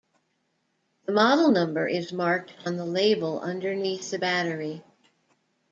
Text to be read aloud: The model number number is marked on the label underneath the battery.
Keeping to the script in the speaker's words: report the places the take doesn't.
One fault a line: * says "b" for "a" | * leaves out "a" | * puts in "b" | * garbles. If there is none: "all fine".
* leaves out "number"